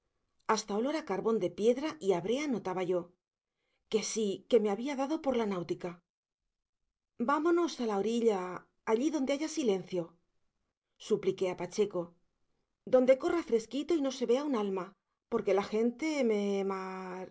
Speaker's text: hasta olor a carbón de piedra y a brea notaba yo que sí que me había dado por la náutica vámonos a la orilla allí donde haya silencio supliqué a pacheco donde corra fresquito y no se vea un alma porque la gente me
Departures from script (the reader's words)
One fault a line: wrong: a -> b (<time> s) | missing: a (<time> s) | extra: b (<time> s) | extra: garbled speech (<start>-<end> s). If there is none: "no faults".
no faults